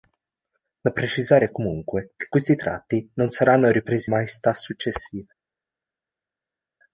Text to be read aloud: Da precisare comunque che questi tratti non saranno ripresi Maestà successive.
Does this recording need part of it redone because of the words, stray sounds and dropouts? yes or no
no